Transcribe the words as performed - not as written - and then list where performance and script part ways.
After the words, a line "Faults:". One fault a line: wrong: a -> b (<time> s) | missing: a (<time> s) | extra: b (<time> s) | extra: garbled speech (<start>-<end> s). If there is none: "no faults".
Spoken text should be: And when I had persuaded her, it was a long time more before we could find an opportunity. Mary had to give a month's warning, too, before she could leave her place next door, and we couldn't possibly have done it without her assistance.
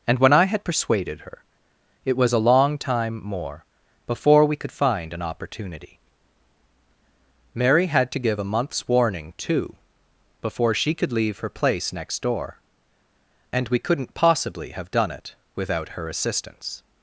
And when I had persuaded her, it was a long time more before we could find an opportunity. Mary had to give a month's warning, too, before she could leave her place next door, and we couldn't possibly have done it without her assistance.
Faults:
no faults